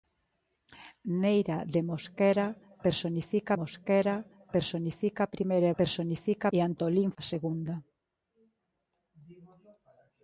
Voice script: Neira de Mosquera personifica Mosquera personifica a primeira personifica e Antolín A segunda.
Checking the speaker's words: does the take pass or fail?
pass